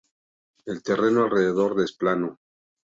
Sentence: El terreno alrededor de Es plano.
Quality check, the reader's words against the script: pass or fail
pass